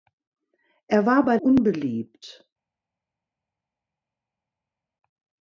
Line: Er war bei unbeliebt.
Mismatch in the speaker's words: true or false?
false